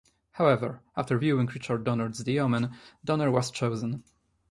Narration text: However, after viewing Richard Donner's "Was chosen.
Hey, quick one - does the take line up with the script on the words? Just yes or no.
no